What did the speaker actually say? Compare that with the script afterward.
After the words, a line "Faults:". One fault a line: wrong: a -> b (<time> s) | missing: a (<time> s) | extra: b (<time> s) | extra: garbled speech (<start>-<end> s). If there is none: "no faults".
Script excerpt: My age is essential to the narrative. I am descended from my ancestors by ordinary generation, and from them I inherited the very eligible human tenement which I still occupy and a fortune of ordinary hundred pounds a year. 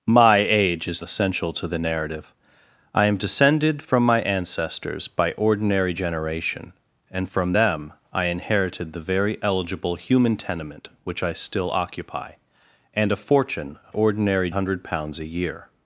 My age is essential to the narrative. I am descended from my ancestors by ordinary generation, and from them I inherited the very eligible human tenement which I still occupy and a fortune of ordinary hundred pounds a year.
Faults:
no faults